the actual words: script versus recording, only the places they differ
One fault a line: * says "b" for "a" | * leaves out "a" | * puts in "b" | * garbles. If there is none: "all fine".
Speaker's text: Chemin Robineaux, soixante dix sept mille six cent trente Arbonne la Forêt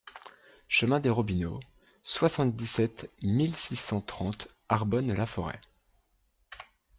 * puts in "des"